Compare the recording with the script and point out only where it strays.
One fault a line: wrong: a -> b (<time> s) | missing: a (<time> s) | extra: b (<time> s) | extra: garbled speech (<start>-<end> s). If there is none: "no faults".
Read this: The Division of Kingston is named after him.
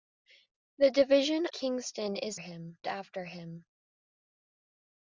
missing: of (1.4 s)
wrong: named -> him (2.4 s)